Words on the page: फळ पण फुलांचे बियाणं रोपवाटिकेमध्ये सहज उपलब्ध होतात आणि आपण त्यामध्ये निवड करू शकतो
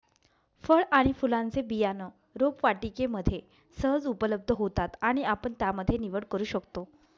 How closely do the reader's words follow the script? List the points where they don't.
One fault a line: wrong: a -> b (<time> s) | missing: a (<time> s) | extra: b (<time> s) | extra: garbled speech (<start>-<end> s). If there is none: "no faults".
wrong: पण -> आणि (0.9 s)